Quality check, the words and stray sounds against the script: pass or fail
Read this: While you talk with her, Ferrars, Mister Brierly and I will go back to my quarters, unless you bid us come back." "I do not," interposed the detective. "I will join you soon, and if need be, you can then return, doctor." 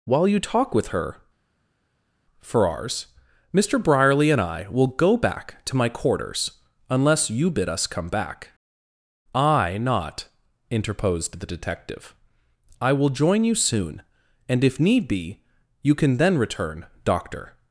fail